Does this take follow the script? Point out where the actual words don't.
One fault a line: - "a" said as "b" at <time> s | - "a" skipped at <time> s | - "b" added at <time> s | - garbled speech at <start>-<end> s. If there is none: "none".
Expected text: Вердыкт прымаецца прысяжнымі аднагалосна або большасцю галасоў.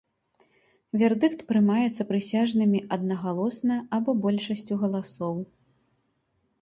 none